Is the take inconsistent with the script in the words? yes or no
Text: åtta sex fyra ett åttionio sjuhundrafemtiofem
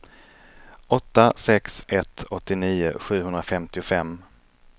yes